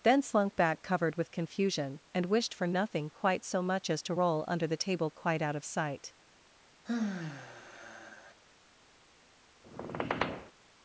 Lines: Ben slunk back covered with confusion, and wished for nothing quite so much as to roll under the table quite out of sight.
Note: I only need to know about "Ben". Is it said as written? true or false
false